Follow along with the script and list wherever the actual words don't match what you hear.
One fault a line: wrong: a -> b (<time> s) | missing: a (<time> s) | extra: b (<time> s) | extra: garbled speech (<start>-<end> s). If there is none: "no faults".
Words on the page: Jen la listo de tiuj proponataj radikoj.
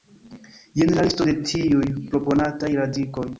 no faults